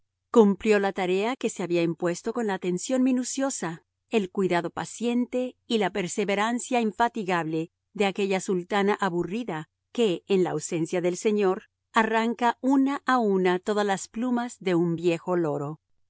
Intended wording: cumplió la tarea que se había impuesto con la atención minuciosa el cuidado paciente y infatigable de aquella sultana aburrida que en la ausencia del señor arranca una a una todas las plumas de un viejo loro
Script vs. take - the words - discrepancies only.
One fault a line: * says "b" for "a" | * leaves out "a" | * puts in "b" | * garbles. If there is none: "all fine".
* puts in "la perseverancia"